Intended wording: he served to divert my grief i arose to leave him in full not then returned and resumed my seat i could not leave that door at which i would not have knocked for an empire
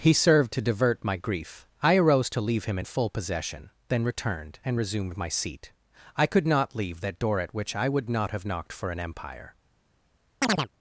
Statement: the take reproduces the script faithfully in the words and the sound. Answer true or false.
false